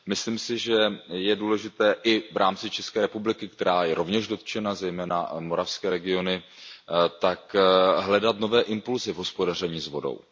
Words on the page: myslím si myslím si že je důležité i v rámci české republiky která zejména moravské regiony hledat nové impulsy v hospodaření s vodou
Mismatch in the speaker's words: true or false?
true